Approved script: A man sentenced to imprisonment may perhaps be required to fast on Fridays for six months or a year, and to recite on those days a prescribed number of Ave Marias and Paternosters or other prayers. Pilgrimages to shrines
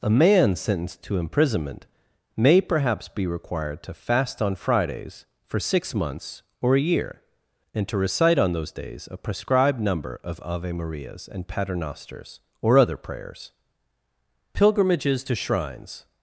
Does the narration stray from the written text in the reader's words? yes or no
no